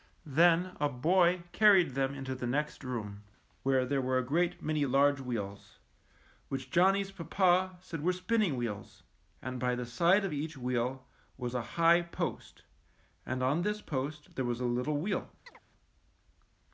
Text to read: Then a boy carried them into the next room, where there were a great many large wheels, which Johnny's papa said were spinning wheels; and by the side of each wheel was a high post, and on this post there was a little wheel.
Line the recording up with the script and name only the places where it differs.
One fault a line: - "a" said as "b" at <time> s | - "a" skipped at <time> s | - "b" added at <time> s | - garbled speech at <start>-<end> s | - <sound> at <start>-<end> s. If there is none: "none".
- chirp at 15.5-15.6 s